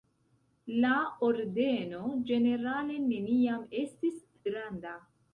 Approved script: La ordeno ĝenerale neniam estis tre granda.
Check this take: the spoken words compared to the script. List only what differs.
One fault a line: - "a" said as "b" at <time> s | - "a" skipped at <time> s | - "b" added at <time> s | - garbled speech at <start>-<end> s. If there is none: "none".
- "tre" skipped at 4.2 s